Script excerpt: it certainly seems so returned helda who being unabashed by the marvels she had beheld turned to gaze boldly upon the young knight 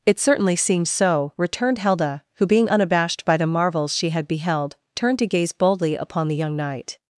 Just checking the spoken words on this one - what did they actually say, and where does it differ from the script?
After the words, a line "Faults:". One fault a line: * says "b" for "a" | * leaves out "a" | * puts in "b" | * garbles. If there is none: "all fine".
it certainly seems so returned helda who being unabashed by the marvels she had beheld turned to gaze boldly upon the young knight
Faults:
all fine